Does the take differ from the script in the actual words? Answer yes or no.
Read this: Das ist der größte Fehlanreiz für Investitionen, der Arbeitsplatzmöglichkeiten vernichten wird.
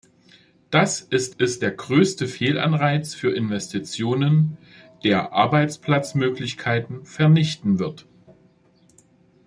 yes